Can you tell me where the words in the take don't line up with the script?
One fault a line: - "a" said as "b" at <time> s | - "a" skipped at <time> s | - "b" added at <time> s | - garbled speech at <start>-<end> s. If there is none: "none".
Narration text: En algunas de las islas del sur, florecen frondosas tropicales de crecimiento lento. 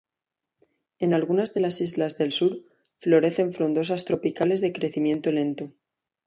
none